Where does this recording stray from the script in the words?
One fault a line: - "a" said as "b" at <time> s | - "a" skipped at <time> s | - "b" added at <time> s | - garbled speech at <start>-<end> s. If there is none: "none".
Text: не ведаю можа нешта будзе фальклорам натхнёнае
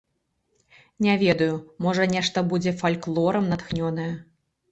none